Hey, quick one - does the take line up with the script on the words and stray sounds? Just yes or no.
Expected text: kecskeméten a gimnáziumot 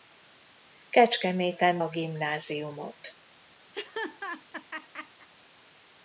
no